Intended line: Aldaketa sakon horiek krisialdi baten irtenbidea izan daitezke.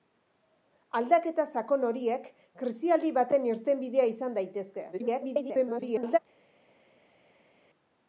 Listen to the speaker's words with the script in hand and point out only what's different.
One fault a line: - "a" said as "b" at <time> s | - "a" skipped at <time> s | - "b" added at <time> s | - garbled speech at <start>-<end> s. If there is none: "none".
- garbled speech at 4.9-6.2 s